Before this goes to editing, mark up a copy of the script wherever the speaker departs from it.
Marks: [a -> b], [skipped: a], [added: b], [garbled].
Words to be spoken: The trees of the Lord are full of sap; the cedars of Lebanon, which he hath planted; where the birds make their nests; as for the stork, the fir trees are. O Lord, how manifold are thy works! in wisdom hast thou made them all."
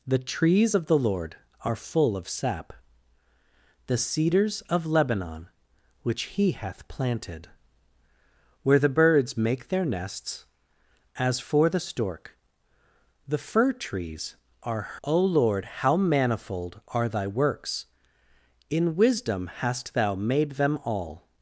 The trees of the Lord are full of sap; the cedars of Lebanon, which he hath planted; where the birds make their nests; as for the stork, the fir trees are. O Lord, how manifold are thy works! in wisdom hast thou made them all."